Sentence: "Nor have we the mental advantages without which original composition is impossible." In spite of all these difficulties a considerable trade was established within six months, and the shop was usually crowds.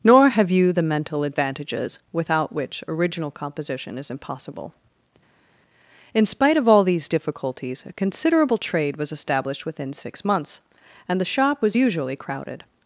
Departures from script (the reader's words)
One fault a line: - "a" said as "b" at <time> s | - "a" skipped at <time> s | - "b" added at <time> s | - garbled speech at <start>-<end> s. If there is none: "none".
- "we" said as "you" at 0.5 s
- "crowds" said as "crowded" at 12.1 s